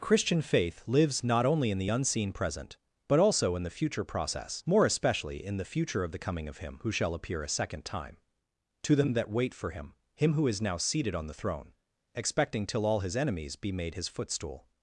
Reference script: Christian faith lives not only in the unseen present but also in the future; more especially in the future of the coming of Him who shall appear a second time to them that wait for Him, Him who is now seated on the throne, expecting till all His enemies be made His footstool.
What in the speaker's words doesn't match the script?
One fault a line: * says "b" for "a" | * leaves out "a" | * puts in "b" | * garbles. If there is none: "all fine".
* puts in "process"